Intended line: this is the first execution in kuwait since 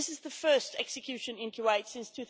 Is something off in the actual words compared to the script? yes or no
no